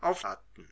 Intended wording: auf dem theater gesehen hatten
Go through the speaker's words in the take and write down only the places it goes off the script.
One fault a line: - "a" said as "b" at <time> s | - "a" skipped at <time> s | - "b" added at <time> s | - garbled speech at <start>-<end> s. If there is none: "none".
- "dem theater gesehen" skipped at 0.2 s